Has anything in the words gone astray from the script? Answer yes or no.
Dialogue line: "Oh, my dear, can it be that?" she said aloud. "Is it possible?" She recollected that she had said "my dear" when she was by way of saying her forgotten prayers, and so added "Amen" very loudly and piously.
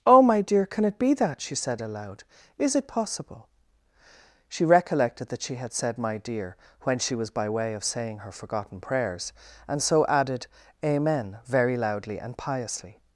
no